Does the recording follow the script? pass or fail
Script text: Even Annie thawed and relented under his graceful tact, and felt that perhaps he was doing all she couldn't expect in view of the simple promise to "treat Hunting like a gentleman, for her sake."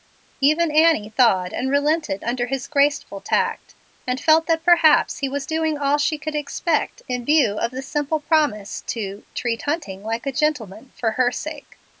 fail